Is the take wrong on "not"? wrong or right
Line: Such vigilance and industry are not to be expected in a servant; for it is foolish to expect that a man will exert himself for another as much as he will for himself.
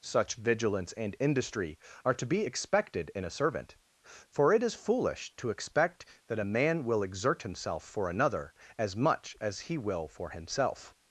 wrong